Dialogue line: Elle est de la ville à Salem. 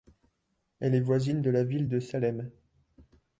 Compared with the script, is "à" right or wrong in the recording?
wrong